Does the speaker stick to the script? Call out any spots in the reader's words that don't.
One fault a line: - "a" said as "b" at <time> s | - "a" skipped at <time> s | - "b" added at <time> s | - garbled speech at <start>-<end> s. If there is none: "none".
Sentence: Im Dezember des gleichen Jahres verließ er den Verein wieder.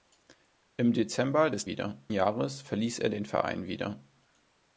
- "gleichen" said as "wieder" at 1.6 s